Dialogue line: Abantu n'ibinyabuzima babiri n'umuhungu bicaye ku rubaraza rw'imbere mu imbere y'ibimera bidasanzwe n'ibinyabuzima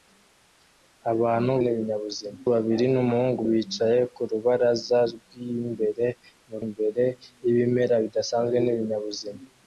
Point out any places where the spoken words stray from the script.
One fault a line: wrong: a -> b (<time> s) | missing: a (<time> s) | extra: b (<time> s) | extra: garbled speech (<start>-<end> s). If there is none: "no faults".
no faults